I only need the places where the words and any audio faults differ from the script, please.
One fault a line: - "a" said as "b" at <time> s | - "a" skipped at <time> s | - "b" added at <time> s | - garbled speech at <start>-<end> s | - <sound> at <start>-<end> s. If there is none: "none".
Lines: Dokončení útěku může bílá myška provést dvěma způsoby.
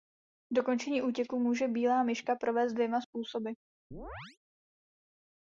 - chirp at 3.9-4.4 s